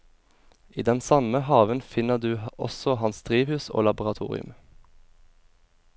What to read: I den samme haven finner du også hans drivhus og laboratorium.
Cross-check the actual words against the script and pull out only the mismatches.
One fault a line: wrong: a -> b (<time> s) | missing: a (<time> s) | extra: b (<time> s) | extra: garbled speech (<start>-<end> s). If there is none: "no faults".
no faults